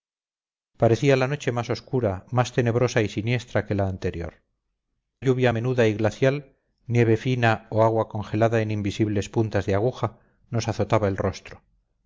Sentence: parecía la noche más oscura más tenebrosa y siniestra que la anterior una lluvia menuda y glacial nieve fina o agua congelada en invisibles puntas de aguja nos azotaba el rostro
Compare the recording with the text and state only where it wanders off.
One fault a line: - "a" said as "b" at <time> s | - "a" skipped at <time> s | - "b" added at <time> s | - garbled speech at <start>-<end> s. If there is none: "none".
- "una" skipped at 4.4 s